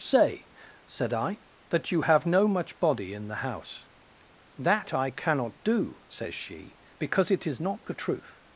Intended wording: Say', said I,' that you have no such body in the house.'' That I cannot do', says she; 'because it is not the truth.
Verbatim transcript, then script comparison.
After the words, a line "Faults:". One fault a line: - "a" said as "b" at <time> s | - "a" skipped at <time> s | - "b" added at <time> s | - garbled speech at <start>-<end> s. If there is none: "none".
Say', said I,' that you have no much body in the house.'' That I cannot do', says she; 'because it is not the truth.
Faults:
- "such" said as "much" at 2.5 s